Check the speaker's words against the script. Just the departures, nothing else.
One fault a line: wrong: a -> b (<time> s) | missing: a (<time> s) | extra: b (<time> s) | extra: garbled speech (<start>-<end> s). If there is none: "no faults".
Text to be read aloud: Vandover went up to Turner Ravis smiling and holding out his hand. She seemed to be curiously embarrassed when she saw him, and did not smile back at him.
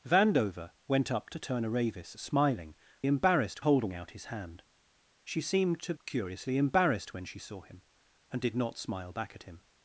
wrong: and -> embarrassed (3.1 s)
missing: be (5.9 s)